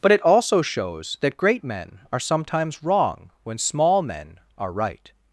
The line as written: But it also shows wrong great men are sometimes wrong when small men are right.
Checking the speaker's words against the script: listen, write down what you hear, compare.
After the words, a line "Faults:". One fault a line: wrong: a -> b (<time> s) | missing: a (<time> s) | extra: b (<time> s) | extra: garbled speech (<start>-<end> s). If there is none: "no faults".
But it also shows that great men are sometimes wrong when small men are right.
Faults:
wrong: wrong -> that (1.2 s)